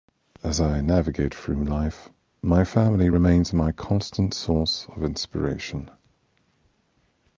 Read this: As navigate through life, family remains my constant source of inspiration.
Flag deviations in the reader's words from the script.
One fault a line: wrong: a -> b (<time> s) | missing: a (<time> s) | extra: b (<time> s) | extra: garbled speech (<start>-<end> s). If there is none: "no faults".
extra: I (0.6 s)
extra: my (2.4 s)